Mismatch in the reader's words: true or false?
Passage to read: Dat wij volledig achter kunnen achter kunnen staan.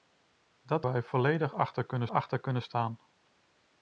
false